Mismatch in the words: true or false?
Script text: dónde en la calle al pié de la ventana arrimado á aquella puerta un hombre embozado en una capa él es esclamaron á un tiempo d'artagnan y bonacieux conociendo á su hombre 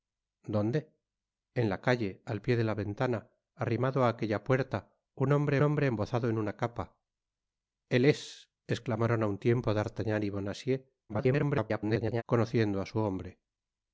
true